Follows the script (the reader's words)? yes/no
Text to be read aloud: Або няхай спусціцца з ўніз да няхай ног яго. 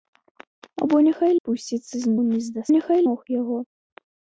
yes